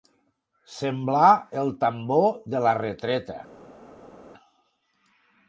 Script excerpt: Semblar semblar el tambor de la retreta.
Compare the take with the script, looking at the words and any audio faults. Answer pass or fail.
fail